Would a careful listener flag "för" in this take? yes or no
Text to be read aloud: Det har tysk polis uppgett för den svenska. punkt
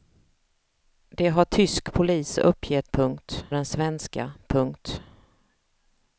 yes